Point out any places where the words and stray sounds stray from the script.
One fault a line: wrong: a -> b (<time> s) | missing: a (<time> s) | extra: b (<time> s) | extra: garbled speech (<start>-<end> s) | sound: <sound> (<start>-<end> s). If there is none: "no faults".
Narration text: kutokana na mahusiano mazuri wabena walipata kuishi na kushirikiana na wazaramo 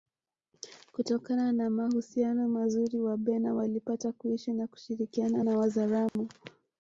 sound: dropout (6.1-6.2 s)